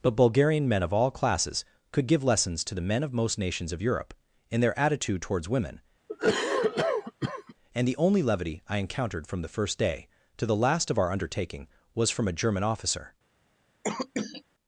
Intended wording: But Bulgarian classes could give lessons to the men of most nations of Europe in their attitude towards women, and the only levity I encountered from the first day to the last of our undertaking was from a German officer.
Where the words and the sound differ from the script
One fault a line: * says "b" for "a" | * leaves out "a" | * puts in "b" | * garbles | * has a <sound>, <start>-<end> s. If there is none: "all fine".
* puts in "men of all"
* has a cough, 6.1-7.5 s
* has a cough, 13.8-14.4 s